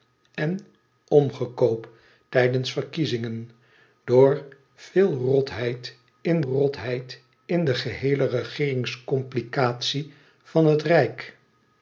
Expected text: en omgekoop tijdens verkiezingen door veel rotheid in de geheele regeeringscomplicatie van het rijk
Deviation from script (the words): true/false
true